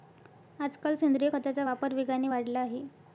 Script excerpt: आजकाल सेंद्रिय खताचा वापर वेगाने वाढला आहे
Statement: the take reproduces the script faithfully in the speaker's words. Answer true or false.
true